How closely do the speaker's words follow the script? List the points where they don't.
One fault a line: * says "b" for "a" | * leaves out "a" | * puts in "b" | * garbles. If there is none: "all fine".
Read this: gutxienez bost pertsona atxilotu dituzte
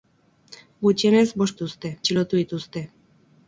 * says "dituzte" for "pertsona"